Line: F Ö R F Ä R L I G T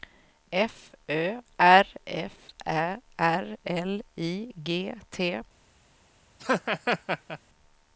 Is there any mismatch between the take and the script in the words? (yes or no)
no